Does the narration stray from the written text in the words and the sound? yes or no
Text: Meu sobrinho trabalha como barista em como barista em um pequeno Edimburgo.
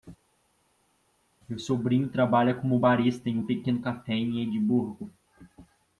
yes